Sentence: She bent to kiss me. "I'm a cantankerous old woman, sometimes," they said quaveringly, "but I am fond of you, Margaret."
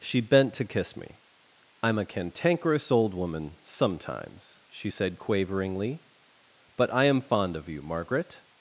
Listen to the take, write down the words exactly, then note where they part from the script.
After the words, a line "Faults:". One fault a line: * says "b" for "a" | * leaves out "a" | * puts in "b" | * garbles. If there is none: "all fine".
She bent to kiss me. "I'm a cantankerous old woman, sometimes," she said quaveringly, "but I am fond of you, Margaret."
Faults:
* says "she" for "they"